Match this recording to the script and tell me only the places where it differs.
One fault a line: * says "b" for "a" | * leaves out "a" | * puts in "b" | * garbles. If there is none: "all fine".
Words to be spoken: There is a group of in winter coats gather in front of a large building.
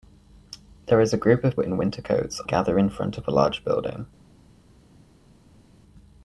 all fine